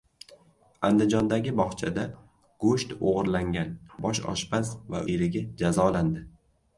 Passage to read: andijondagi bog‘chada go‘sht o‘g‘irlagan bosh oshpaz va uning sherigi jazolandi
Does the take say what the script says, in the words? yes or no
no